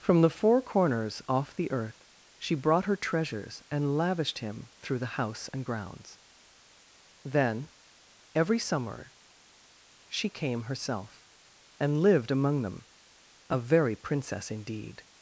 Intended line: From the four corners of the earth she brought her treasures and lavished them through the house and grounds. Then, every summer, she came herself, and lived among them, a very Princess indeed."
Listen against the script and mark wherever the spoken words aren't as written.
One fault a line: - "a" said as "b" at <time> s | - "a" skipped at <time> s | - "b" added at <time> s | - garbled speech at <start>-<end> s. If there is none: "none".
- "of" said as "off" at 1.3 s
- "them" said as "him" at 4.4 s